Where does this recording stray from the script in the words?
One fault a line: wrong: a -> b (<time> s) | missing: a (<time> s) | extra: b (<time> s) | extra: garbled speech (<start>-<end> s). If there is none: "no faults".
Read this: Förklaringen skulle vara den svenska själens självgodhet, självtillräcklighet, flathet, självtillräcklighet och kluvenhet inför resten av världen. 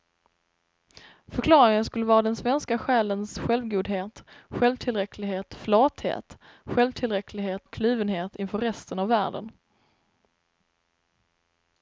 no faults